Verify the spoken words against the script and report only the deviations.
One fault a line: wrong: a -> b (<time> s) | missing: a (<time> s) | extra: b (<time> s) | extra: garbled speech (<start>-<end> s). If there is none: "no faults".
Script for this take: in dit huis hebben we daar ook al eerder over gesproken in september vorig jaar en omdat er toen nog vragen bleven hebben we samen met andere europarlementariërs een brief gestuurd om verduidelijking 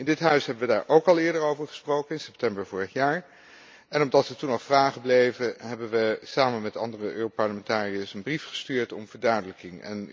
no faults